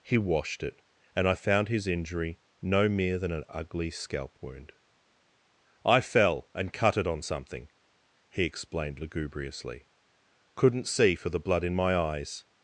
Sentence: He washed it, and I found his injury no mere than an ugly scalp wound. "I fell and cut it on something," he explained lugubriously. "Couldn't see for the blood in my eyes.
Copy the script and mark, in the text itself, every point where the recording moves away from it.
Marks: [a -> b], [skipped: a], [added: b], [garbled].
He washed it, and I found his injury no mere than an ugly scalp wound. "I fell and cut it on something," he explained lugubriously. "Couldn't see for the blood in my eyes.